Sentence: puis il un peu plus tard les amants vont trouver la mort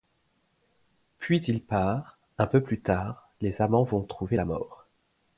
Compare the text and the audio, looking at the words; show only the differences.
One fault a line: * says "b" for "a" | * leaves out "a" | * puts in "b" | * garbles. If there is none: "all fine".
* puts in "part"